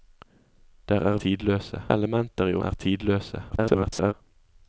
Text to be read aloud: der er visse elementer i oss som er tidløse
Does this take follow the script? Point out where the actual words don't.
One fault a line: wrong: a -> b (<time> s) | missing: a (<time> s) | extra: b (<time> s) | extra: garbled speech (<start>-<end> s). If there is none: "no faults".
wrong: visse -> tidløse (1.2 s)
missing: oss som (2.5 s)
extra: garbled speech (3.5-4.1 s)